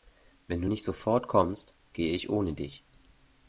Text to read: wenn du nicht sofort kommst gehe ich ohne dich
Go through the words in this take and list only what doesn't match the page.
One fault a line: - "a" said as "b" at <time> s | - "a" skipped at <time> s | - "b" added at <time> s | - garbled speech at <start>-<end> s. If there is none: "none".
none